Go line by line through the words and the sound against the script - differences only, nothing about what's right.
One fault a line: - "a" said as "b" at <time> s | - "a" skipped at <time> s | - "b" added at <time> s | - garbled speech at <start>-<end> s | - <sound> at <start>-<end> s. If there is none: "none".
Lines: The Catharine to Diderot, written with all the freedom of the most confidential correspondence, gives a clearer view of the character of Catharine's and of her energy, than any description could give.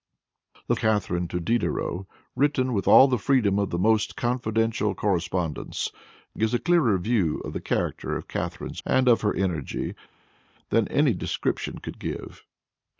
none